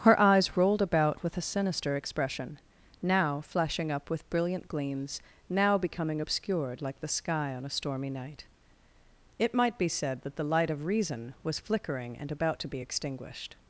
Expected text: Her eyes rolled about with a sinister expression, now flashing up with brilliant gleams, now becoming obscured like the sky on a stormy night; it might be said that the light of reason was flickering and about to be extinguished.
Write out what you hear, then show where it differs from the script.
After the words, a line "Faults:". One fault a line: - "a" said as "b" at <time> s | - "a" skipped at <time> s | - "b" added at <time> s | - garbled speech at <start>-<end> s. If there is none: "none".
Her eyes rolled about with a sinister expression, now flashing up with brilliant gleams, now becoming obscured like the sky on a stormy night; it might be said that the light of reason was flickering and about to be extinguished.
Faults:
none